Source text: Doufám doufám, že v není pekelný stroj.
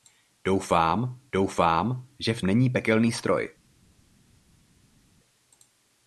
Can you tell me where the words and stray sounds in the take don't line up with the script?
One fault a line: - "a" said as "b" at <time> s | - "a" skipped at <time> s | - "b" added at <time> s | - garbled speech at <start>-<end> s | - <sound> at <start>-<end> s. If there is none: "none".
none